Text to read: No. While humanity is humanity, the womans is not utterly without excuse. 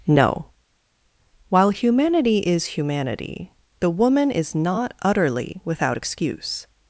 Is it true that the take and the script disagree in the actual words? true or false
true